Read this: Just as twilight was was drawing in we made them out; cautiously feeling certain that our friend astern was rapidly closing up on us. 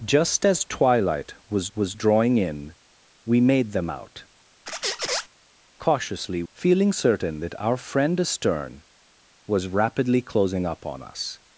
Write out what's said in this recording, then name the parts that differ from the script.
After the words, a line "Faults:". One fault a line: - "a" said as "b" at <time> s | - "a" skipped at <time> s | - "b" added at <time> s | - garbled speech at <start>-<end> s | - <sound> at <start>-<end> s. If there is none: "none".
Just as twilight was was drawing in we made them out; cautiously feeling certain that our friend astern was rapidly closing up on us.
Faults:
- squeak at 4.7-5.3 s